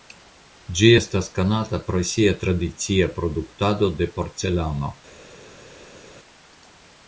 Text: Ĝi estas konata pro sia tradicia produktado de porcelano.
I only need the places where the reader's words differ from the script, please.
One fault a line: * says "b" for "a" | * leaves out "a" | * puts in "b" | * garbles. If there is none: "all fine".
all fine